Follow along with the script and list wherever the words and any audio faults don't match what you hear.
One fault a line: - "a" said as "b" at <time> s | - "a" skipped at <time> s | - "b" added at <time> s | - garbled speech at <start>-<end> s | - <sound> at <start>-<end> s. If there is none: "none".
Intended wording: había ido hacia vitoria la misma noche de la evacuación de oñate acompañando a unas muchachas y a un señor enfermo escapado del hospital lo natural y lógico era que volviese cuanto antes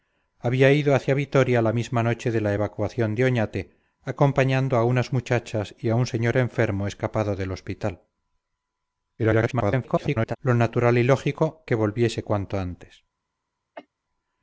- garbled speech at 9.2-10.4 s
- "era" skipped at 11.7 s
- cough at 13.8-13.9 s